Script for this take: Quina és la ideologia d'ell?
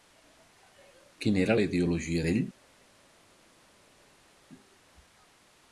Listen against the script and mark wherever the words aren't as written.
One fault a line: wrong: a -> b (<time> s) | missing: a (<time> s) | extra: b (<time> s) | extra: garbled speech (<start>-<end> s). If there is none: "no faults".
wrong: és -> era (1.4 s)